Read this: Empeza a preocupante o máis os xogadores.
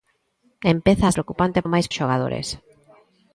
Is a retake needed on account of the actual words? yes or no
no